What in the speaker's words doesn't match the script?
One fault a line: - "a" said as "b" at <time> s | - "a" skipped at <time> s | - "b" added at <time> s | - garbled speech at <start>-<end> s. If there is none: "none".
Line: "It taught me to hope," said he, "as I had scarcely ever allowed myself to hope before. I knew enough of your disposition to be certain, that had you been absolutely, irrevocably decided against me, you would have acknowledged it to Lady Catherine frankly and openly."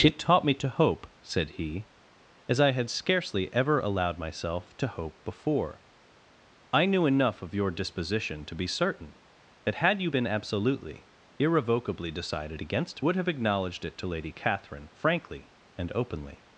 - "me you" skipped at 13.0 s